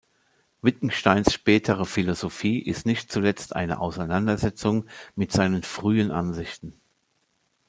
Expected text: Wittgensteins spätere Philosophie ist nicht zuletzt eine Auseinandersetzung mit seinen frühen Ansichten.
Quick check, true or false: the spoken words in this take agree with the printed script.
true